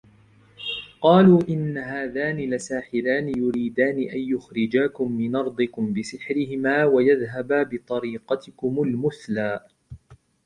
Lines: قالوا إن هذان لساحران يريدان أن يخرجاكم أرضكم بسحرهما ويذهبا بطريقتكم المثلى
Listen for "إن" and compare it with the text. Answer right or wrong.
right